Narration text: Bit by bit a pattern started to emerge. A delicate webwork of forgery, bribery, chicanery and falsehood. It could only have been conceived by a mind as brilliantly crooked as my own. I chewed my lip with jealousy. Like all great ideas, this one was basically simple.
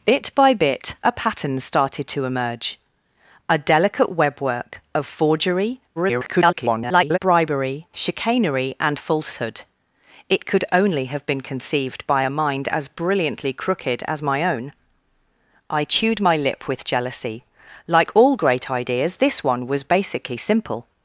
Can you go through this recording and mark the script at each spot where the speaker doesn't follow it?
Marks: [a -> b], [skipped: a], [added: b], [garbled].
Bit by bit a pattern started to emerge. A delicate webwork of forgery, [garbled] bribery, chicanery and falsehood. It could only have been conceived by a mind as brilliantly crooked as my own. I chewed my lip with jealousy. Like all great ideas, this one was basically simple.